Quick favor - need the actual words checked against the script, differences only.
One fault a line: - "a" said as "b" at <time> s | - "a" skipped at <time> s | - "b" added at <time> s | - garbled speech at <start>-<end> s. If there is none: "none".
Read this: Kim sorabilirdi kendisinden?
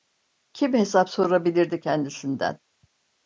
- "hesap" added at 0.7 s